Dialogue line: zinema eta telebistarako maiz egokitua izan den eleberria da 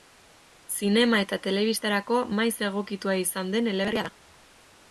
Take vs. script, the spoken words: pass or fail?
pass